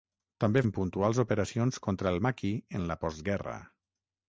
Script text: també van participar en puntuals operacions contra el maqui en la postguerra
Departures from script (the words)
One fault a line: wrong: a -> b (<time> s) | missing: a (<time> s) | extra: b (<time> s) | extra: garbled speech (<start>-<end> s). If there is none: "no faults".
missing: van participar (0.6 s)